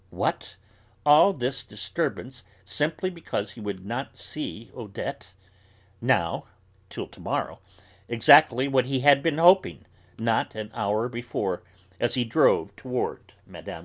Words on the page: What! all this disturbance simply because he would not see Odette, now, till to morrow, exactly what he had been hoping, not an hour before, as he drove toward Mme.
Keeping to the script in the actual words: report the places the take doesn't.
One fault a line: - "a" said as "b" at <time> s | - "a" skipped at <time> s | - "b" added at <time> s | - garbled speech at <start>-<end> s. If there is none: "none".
none